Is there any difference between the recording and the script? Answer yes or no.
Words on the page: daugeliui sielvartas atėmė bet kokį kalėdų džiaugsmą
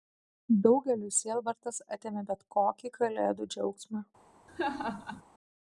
no